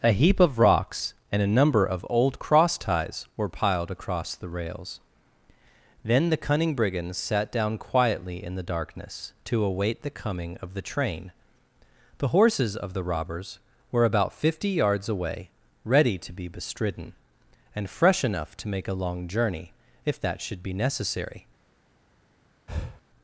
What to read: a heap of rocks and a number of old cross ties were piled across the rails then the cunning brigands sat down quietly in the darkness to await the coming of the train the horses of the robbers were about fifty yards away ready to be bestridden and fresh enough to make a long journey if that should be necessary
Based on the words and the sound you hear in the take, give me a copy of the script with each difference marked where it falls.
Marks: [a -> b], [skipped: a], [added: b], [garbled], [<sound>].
a heap of rocks and a number of old cross ties were piled across the rails then the cunning brigands sat down quietly in the darkness to await the coming of the train the horses of the robbers were about fifty yards away ready to be bestridden and fresh enough to make a long journey if that should be necessary [breath]